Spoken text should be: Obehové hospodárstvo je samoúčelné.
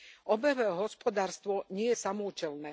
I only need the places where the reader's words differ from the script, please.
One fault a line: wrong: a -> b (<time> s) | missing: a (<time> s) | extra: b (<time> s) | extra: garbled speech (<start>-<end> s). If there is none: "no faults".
extra: nie (1.7 s)